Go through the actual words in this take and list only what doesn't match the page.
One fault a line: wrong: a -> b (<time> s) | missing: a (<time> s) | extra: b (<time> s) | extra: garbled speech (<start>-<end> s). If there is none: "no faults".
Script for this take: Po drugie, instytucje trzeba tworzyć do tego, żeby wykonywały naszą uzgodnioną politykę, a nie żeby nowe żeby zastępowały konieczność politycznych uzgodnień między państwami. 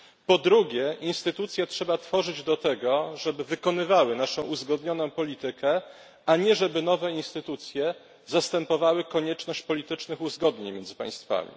wrong: żeby -> instytucje (7.1 s)